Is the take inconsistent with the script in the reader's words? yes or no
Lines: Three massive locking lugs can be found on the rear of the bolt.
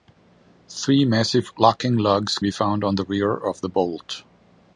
yes